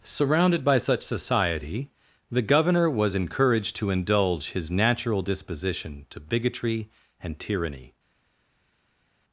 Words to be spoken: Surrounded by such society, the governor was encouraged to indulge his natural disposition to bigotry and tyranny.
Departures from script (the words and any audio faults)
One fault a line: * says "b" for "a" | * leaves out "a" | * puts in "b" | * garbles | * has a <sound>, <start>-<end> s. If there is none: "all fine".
all fine